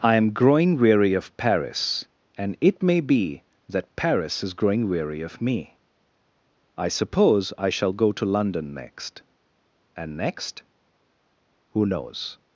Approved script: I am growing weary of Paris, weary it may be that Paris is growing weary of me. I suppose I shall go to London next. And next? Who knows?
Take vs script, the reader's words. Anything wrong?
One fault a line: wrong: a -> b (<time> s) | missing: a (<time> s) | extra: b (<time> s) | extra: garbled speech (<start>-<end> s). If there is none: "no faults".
wrong: weary -> and (2.4 s)